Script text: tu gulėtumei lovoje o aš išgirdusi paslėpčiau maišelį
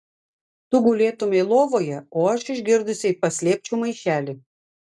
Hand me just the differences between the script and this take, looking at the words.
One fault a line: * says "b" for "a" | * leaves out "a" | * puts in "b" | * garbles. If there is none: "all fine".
all fine